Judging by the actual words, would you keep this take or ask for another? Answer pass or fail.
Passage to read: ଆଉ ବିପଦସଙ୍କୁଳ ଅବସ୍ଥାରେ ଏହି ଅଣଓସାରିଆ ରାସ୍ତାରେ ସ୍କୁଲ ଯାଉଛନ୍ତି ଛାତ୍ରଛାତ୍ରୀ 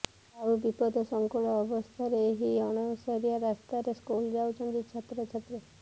pass